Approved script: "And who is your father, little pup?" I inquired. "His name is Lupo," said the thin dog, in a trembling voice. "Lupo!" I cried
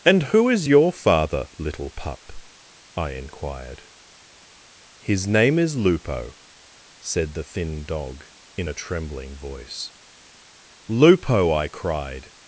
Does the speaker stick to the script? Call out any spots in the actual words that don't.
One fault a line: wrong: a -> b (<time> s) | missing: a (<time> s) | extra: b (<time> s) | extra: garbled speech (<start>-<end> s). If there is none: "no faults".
no faults